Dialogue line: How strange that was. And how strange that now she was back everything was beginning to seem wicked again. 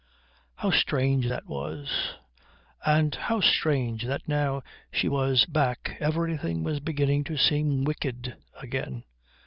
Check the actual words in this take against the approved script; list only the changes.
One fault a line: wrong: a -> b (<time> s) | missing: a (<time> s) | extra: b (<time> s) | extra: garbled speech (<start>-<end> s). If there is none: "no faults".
no faults